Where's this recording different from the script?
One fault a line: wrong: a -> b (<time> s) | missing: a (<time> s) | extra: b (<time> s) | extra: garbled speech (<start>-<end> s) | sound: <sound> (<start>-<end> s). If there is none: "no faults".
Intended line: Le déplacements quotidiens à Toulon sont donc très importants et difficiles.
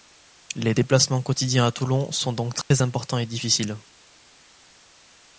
wrong: Le -> Les (0.6 s)
sound: dropout (2.6-2.7 s)